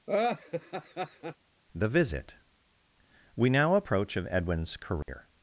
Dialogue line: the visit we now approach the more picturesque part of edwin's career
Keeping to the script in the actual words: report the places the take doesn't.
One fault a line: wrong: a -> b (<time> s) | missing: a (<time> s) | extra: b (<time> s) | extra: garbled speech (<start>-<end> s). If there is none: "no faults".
missing: the more picturesque part (4.2 s)